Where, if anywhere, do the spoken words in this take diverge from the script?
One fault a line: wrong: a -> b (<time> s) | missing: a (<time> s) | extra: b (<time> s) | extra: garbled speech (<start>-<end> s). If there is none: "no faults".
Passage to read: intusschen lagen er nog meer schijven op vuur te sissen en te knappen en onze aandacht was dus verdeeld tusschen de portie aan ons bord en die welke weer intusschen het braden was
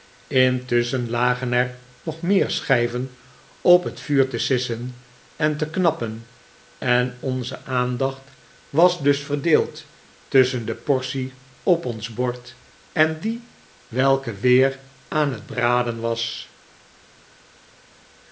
extra: het (3.8 s)
wrong: aan -> op (11.6 s)
wrong: intusschen -> aan (15.1 s)